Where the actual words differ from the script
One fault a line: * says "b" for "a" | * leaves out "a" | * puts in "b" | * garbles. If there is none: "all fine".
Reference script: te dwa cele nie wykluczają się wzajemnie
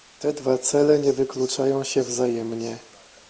all fine